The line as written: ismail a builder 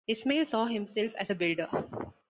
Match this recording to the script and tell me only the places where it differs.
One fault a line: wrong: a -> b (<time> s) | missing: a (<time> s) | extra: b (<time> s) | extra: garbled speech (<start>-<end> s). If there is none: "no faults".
extra: saw himself as (0.5 s)